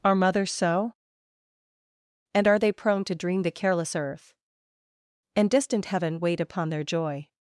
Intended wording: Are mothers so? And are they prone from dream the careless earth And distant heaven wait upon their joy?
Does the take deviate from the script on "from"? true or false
true